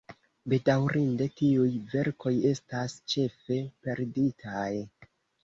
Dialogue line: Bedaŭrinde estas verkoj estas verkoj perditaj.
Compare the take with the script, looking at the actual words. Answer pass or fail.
fail